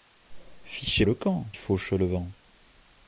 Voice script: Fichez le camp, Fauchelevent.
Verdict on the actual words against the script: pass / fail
pass